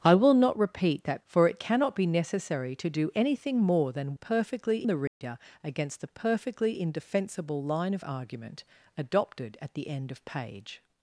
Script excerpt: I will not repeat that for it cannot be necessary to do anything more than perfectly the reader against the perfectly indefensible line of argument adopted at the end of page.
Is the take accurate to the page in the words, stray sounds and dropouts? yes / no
no